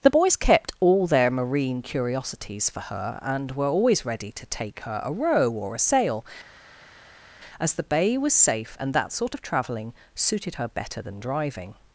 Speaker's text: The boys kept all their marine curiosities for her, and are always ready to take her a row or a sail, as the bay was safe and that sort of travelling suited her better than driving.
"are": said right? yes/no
no